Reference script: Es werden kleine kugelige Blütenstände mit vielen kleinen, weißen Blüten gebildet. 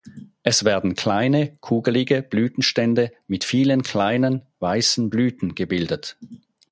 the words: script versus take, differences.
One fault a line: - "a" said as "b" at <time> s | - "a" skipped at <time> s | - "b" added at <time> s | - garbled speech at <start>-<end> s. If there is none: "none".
none